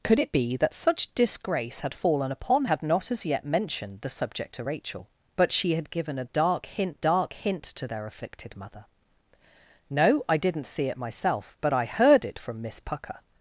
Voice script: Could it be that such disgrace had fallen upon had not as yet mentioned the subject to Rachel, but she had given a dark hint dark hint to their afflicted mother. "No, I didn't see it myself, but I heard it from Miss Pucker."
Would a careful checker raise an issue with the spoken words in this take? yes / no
no